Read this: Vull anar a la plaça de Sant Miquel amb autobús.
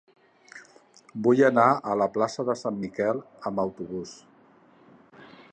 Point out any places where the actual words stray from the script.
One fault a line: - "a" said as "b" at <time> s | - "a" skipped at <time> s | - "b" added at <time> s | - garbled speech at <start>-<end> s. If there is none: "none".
none